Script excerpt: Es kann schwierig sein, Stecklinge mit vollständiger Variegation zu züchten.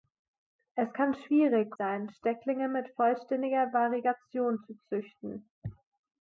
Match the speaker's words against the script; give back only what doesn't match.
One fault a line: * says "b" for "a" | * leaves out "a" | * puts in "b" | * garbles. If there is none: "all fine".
all fine